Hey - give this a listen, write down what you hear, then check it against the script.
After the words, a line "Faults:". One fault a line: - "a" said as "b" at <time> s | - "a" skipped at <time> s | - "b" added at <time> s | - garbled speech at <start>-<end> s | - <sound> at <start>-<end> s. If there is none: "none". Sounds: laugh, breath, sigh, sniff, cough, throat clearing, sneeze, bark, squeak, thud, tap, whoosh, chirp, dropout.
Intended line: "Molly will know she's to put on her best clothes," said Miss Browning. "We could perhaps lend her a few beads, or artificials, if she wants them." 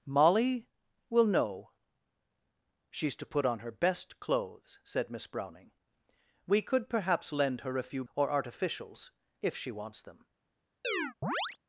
"Molly will know she's to put on her best clothes," said Miss Browning. "We could perhaps lend her a few or artificials, if she wants them."
Faults:
- "beads" skipped at 8.0 s
- chirp at 10.8-11.6 s